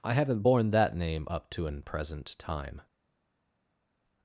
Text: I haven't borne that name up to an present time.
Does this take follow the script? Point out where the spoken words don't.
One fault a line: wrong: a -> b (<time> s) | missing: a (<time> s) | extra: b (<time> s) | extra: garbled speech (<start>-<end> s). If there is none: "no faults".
no faults